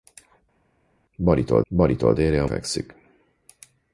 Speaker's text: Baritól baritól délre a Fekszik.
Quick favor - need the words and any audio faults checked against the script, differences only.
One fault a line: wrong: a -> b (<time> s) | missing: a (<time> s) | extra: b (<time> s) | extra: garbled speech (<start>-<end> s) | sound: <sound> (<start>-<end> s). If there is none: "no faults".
no faults